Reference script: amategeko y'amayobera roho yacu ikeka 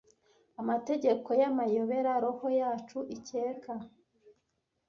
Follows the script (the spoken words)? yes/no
yes